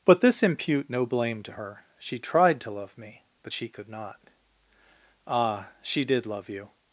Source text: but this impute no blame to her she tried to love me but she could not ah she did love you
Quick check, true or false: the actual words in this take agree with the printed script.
true